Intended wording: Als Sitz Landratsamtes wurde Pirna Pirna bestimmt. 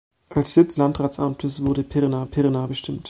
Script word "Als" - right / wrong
right